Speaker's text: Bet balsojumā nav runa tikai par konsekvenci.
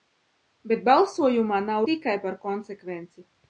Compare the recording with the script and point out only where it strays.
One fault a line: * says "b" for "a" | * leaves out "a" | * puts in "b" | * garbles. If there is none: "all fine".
* leaves out "runa"